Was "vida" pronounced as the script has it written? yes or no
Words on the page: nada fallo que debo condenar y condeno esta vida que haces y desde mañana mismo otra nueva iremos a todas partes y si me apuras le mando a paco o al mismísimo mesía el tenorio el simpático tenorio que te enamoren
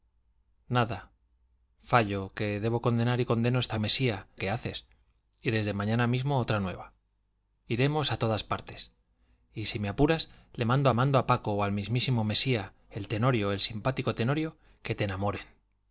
no